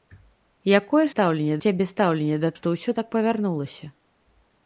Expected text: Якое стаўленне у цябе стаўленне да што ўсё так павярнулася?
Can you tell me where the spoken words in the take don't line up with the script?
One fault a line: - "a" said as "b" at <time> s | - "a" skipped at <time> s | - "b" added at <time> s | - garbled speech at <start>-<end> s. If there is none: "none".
none